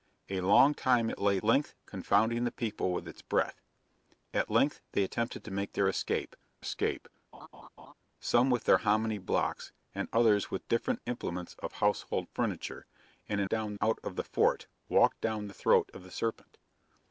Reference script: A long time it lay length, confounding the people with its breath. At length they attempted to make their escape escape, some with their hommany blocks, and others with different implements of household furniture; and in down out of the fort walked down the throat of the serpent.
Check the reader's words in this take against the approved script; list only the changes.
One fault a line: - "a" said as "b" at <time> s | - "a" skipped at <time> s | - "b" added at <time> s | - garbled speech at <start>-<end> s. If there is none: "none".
none